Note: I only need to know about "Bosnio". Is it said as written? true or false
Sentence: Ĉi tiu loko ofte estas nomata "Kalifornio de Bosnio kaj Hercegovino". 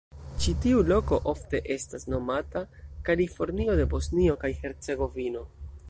true